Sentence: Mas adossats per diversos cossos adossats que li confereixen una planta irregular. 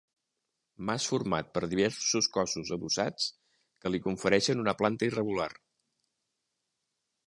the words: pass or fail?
fail